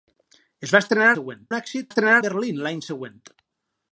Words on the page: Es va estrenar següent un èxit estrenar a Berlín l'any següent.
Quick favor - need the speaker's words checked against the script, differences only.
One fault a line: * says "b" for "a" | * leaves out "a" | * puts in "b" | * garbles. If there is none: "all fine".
all fine